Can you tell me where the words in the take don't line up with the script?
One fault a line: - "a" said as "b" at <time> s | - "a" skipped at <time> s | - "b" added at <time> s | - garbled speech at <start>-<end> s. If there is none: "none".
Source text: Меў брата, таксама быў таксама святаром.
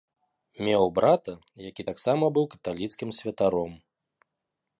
- "які" added at 1.7 s
- "таксама" said as "каталіцкім" at 2.6 s